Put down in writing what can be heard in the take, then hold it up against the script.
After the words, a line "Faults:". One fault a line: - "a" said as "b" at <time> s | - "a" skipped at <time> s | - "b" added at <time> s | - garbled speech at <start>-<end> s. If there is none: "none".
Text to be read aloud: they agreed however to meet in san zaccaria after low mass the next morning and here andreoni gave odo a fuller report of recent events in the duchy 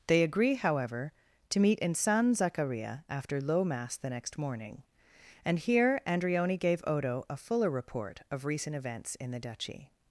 they agree however to meet in san zaccaria after low mass the next morning and here andreoni gave odo a fuller report of recent events in the duchy
Faults:
- "agreed" said as "agree" at 0.2 s